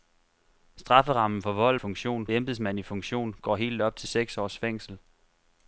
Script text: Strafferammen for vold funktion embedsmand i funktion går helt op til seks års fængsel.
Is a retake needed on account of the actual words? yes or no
no